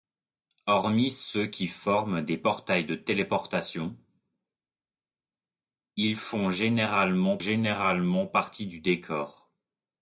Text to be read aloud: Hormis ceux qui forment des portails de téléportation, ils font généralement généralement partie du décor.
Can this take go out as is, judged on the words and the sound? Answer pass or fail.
pass